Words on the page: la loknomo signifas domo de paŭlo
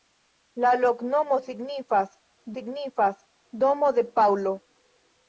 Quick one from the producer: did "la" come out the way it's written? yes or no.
yes